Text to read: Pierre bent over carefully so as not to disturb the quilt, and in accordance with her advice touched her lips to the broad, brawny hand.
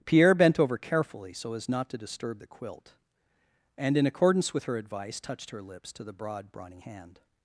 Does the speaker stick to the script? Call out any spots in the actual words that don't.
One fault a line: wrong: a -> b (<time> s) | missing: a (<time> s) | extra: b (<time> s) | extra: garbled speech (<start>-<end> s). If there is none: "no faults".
no faults